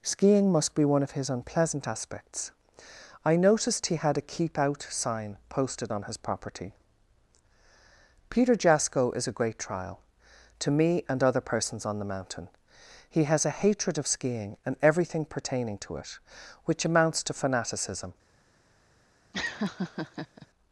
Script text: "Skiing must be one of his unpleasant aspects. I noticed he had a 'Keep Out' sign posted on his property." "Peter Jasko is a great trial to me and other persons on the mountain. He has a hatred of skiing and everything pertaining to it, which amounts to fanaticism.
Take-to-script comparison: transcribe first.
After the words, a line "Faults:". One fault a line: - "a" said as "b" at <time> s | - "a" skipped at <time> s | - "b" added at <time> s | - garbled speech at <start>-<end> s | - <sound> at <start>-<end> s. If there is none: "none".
"Skiing must be one of his unpleasant aspects. I noticed he had a 'Keep Out' sign posted on his property." "Peter Jasko is a great trial to me and other persons on the mountain. He has a hatred of skiing and everything pertaining to it, which amounts to fanaticism.
Faults:
- laugh at 19.3-20.5 s